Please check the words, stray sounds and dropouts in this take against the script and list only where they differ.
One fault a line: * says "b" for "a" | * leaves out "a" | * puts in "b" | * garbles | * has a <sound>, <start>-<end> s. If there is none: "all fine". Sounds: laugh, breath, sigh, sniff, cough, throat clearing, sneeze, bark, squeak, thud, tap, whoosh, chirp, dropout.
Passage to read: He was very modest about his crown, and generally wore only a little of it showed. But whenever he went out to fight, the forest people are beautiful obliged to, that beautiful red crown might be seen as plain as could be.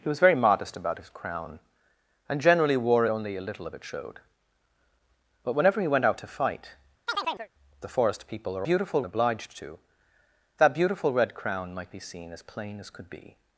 * has a chirp, 7.1-7.5 s